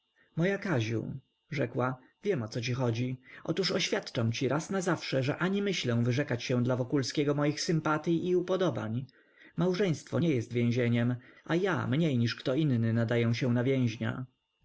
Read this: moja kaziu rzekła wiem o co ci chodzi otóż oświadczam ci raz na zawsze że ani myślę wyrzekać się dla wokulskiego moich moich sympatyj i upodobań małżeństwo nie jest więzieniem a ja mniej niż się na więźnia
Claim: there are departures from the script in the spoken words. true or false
true